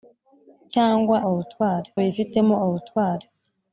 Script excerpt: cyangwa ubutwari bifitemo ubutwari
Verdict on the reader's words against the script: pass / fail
pass